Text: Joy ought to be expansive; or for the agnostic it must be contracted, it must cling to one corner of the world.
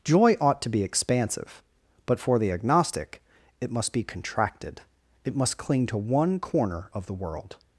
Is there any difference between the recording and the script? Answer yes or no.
yes